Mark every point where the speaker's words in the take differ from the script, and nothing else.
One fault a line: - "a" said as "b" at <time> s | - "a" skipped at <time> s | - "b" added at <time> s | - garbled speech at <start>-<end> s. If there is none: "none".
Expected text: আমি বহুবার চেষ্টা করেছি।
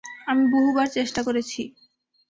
none